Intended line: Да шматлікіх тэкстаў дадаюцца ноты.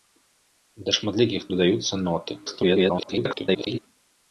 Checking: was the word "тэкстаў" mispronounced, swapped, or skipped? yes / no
yes